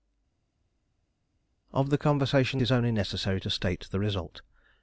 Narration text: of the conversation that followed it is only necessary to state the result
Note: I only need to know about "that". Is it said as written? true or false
false